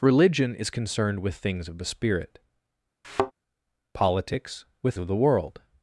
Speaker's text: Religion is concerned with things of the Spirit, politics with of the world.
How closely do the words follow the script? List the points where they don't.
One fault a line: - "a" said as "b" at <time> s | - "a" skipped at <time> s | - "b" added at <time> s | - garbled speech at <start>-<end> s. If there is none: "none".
none